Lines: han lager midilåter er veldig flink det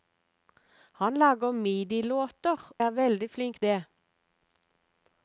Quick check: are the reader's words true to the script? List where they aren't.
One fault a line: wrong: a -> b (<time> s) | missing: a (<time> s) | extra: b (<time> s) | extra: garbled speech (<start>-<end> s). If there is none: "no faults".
no faults